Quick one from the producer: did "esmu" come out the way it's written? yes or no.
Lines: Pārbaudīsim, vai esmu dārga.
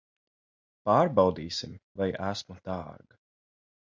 yes